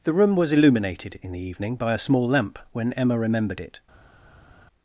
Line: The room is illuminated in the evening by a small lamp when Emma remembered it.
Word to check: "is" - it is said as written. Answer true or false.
false